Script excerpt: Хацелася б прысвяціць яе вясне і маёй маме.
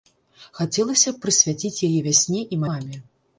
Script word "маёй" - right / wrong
wrong